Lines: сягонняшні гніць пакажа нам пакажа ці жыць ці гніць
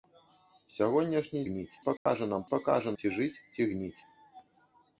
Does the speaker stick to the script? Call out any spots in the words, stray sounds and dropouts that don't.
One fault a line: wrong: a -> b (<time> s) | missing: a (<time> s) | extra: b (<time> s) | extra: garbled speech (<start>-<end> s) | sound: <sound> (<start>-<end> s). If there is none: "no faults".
sound: dropout (2.0-2.1 s)